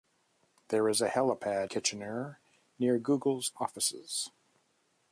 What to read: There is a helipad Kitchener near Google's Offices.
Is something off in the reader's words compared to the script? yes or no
no